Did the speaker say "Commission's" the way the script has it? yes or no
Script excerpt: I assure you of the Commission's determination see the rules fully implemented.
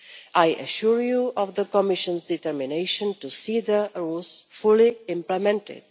yes